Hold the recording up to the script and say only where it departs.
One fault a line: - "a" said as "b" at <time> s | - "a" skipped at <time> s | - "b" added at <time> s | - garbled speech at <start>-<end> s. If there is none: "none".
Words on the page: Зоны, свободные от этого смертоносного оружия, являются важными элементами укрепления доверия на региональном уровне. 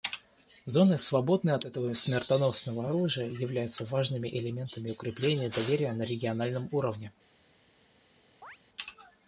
none